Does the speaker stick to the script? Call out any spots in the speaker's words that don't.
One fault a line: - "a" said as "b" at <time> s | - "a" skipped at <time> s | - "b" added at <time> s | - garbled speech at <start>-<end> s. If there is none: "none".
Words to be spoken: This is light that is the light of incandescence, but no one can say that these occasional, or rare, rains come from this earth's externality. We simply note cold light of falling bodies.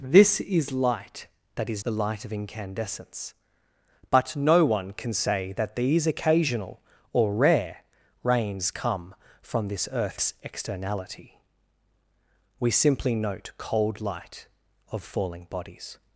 none